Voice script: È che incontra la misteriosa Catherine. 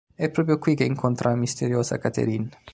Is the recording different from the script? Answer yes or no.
yes